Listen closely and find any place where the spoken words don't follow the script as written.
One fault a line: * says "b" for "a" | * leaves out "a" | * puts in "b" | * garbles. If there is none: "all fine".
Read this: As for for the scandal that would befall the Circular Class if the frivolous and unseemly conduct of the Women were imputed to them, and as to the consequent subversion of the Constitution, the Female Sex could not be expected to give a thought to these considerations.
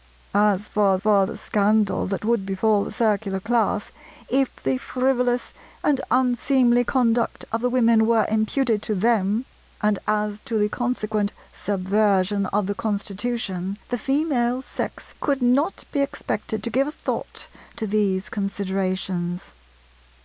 all fine